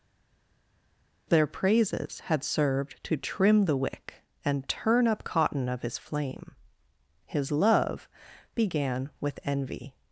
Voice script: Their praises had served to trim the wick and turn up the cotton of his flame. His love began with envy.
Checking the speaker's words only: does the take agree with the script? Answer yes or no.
no